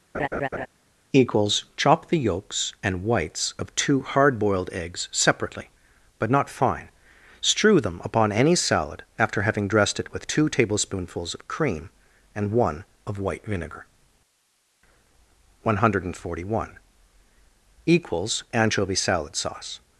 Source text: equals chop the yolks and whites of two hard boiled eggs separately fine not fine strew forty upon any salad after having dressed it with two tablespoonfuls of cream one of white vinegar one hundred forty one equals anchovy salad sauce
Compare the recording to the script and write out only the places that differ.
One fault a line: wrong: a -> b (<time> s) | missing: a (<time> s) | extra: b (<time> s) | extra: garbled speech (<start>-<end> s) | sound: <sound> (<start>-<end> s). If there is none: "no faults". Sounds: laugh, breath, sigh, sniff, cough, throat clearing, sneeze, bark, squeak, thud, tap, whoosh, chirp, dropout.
sound: laugh (0.1-0.7 s)
wrong: fine -> but (6.2 s)
wrong: forty -> them (7.8 s)
extra: and (12.3 s)